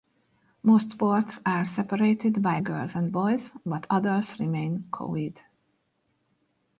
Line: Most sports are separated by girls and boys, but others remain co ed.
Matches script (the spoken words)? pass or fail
pass